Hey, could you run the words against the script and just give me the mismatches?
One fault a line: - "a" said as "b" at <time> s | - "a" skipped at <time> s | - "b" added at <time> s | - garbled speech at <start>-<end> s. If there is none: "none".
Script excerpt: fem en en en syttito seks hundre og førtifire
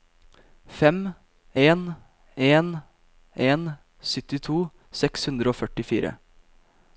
none